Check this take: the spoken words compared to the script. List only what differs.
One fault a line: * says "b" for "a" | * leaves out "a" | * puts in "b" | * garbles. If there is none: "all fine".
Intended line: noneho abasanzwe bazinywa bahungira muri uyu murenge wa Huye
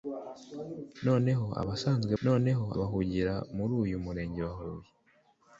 * says "noneho" for "bazinywa"